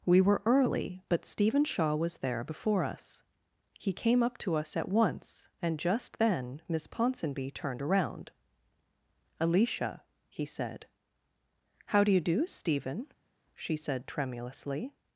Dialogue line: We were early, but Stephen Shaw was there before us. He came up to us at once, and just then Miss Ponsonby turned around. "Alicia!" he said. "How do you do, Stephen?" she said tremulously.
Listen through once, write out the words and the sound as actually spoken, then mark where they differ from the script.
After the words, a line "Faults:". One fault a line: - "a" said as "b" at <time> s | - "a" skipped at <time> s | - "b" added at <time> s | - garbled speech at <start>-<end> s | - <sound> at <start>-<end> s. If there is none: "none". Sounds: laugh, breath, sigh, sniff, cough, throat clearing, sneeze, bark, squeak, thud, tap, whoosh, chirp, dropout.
We were early, but Stephen Shaw was there before us. He came up to us at once, and just then Miss Ponsonby turned around. "Alicia!" he said. "How do you do, Stephen?" she said tremulously.
Faults:
none